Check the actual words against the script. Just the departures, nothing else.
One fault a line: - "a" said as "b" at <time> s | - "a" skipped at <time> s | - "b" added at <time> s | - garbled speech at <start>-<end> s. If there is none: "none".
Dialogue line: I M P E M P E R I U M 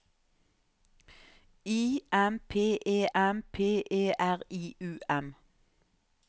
none